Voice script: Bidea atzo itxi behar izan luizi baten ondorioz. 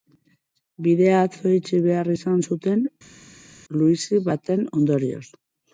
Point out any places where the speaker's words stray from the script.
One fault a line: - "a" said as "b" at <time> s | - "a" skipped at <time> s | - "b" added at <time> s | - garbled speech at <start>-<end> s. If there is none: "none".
- "zuten" added at 2.5 s